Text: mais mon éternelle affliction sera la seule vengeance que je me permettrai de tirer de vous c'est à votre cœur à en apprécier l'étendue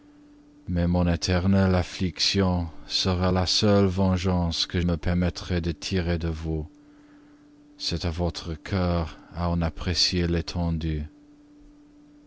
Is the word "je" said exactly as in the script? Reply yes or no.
no